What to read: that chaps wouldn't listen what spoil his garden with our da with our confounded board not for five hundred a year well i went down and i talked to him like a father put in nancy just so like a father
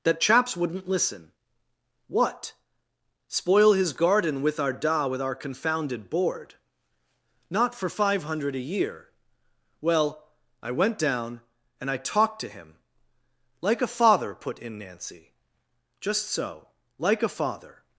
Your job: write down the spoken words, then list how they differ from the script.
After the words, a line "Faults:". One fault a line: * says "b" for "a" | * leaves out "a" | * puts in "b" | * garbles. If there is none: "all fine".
that chaps wouldn't listen what spoil his garden with our da with our confounded board not for five hundred a year well i went down and i talked to him like a father put in nancy just so like a father
Faults:
all fine